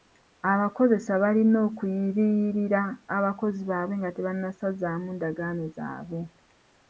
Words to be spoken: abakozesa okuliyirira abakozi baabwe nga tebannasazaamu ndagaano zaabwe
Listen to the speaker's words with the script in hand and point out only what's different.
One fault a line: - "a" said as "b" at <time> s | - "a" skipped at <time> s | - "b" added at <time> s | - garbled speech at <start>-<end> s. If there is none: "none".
- "balina" added at 1.2 s